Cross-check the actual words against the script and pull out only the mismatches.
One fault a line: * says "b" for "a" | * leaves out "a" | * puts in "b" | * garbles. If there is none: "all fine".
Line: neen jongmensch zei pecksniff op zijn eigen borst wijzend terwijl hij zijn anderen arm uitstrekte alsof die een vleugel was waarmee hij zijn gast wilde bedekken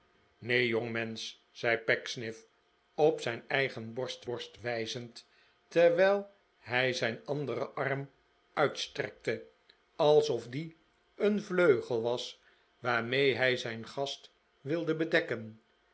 * puts in "borst"